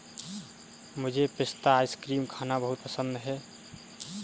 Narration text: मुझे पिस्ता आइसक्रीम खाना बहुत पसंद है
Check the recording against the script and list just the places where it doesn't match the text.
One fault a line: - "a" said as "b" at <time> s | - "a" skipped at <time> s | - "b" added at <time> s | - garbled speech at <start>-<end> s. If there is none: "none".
none